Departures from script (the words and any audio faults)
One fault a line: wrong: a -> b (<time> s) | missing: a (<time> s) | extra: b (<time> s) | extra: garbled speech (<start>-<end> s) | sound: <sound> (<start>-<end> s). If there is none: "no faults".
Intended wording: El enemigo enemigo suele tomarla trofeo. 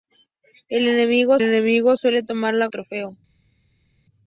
no faults